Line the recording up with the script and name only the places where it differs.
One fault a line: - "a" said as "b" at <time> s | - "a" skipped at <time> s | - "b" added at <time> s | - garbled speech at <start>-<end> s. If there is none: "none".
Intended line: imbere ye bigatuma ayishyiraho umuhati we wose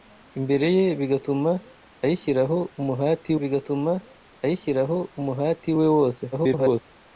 - "bigatuma ayishyiraho umuhati" added at 3.4 s
- garbled speech at 6.3-6.8 s